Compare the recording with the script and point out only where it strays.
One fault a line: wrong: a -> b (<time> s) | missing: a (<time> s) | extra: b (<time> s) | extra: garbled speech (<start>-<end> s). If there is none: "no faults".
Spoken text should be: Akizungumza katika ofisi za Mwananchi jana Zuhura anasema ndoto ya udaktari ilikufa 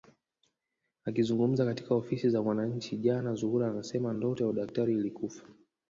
no faults